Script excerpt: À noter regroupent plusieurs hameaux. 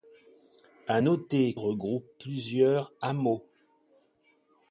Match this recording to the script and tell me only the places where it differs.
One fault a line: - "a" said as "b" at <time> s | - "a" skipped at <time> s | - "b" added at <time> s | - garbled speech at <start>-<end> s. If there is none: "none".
none